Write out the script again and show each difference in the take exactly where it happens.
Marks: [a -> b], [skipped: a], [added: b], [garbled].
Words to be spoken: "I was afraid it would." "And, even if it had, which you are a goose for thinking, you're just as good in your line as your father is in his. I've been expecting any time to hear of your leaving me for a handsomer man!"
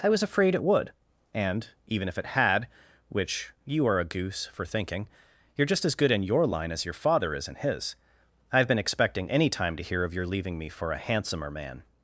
"I was afraid it would." "And, even if it had, which you are a goose for thinking, you're just as good in your line as your father is in his. I've been expecting any time to hear of your leaving me for a handsomer man!"